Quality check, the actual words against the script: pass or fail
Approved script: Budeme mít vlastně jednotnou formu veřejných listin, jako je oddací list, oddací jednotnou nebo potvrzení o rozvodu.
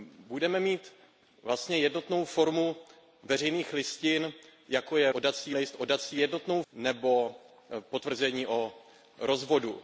pass